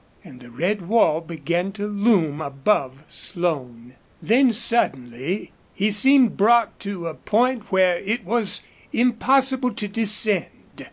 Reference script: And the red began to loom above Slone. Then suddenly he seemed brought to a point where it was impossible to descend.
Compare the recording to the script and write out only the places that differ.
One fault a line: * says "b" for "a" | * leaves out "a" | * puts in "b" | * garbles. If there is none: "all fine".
* puts in "wall"